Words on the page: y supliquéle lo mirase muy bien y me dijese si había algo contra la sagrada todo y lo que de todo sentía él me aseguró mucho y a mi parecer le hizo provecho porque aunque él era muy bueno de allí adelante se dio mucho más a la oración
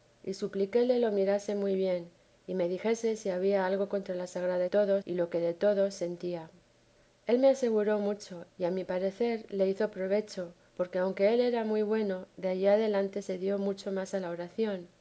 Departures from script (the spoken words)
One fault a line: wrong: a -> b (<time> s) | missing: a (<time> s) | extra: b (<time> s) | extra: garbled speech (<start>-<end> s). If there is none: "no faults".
no faults